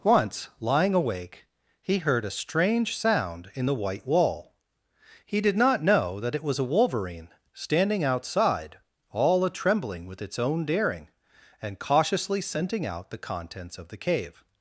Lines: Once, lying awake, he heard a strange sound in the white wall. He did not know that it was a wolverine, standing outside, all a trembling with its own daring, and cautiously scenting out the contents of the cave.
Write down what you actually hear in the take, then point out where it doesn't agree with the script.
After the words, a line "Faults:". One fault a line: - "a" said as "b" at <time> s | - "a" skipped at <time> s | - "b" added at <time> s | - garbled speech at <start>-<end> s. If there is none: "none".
Once, lying awake, he heard a strange sound in the white wall. He did not know that it was a wolverine, standing outside, all a trembling with its own daring, and cautiously scenting out the contents of the cave.
Faults:
none